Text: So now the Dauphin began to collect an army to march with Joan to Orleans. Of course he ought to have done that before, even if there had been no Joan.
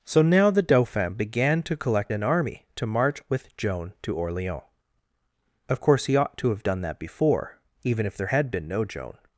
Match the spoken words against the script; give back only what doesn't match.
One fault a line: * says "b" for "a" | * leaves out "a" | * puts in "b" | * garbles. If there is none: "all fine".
all fine